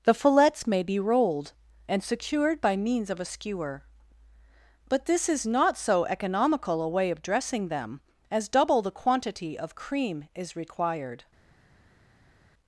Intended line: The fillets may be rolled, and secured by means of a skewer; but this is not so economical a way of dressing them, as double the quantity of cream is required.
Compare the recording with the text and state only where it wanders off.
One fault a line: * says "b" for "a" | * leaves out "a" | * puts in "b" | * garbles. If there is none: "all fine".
all fine